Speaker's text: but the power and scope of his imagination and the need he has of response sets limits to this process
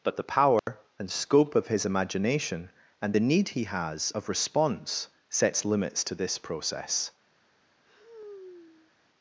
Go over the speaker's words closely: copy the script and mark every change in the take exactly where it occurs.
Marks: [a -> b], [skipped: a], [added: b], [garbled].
but the power and scope of his imagination and the need he has of response sets limits to this process